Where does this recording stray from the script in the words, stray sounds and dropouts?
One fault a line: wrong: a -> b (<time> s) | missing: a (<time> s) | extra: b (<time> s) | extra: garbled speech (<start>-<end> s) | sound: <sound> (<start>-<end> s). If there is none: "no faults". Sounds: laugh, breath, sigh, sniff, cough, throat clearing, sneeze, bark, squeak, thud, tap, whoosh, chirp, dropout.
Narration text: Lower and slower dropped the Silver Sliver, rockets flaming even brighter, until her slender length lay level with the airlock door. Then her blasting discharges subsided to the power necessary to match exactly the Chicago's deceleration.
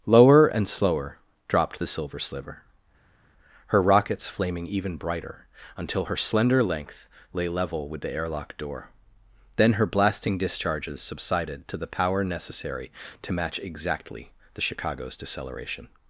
extra: her (3.7 s)